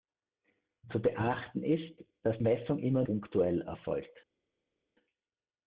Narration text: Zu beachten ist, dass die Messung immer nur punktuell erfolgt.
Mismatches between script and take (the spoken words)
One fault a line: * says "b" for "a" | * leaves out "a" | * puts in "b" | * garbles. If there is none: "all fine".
* leaves out "die"
* leaves out "nur"